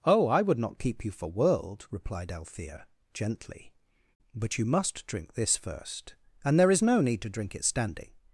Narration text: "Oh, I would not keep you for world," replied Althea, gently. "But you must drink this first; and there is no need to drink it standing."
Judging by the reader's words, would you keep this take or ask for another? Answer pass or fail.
pass